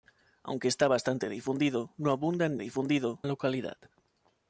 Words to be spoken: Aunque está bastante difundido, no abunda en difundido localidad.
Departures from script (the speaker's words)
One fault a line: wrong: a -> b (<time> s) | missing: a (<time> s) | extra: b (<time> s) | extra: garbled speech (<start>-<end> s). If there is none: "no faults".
no faults